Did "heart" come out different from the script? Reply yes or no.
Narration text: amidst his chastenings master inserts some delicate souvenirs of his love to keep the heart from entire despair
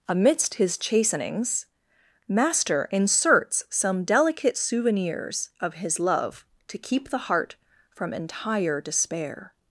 no